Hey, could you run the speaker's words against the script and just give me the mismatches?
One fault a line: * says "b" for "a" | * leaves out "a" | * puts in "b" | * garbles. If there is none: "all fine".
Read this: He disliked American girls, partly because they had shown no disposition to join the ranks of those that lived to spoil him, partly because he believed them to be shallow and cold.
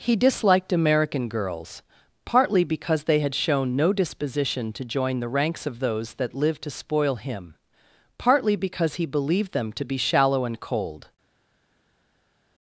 all fine